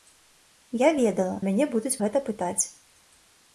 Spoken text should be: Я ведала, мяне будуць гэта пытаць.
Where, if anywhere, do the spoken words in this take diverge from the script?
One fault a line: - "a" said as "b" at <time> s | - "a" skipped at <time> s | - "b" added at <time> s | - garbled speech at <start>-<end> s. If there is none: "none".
none